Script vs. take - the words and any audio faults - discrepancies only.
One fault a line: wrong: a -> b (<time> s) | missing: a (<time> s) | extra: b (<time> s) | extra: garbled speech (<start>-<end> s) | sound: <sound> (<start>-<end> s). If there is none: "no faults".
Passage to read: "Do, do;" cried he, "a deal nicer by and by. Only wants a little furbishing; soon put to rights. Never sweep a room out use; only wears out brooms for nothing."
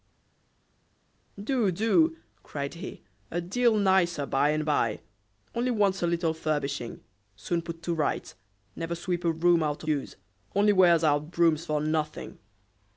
no faults